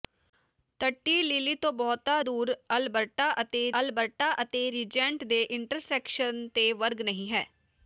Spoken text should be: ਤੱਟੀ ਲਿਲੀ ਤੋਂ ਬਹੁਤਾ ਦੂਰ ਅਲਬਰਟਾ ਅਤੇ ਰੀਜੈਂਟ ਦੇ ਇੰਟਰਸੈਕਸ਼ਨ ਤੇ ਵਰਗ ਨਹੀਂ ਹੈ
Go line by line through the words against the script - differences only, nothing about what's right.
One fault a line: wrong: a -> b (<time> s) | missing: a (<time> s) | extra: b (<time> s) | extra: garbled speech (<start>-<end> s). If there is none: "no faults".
extra: ਅਲਬਰਟਾ ਅਤੇ (3.8 s)